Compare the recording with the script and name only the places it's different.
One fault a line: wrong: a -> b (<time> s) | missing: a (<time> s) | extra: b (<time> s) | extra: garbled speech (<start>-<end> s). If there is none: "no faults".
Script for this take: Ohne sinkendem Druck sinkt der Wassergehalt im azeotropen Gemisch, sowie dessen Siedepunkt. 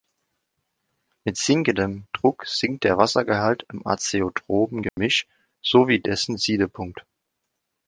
wrong: Ohne -> Mit (1.2 s)